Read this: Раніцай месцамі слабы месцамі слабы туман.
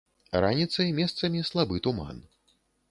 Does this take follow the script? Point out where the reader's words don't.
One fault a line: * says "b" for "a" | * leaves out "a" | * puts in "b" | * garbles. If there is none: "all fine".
* leaves out "месцамі слабы"